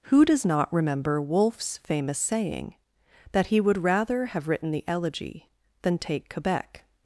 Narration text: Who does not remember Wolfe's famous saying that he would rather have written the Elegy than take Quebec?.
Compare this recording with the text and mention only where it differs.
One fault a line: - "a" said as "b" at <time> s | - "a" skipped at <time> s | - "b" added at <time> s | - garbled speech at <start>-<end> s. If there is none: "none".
none